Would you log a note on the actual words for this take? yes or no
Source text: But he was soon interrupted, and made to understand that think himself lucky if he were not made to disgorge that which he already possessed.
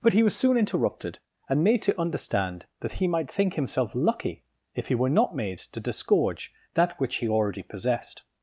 yes